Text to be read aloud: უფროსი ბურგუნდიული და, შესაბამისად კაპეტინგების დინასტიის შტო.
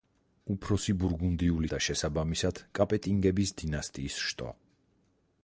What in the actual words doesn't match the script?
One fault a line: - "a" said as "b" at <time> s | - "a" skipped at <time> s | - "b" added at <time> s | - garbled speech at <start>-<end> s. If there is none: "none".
none